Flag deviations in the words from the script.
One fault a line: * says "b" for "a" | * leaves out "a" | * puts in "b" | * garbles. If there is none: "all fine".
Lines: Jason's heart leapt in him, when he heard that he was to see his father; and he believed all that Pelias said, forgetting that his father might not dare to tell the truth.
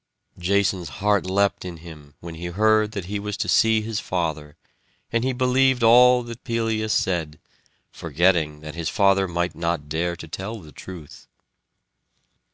all fine